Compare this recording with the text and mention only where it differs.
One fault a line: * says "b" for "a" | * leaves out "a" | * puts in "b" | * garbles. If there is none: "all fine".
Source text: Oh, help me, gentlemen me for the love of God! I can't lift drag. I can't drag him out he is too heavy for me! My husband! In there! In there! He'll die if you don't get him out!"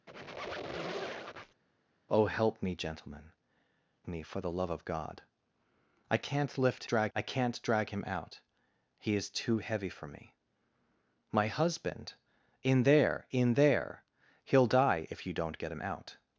all fine